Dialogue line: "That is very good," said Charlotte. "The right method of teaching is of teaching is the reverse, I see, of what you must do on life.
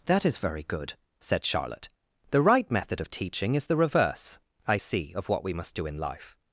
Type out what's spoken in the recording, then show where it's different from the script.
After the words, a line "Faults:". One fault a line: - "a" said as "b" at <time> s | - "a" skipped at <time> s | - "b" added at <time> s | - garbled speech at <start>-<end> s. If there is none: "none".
"That is very good," said Charlotte. "The right method of teaching is the reverse, I see, of what we must do in life.
Faults:
- "of teaching is" skipped at 3.7 s
- "you" said as "we" at 5.4 s
- "on" said as "in" at 5.9 s